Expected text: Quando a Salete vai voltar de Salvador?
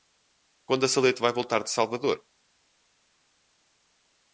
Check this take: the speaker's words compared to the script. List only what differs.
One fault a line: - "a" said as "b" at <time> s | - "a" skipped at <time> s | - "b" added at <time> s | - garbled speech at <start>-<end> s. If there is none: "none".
none